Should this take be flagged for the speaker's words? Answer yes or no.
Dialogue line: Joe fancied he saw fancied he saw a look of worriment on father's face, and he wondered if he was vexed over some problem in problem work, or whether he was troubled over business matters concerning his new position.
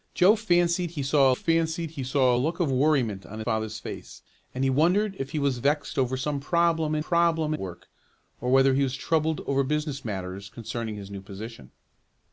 no